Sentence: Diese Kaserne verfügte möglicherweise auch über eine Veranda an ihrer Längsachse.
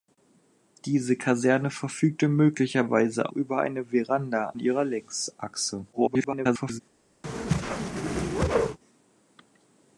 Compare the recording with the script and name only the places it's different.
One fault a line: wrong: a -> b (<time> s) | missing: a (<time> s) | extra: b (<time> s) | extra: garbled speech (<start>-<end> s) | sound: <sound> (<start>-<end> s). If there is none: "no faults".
missing: auch (3.3 s)
missing: an (4.5 s)
extra: garbled speech (5.9-6.8 s)
sound: whoosh (7.2-8.8 s)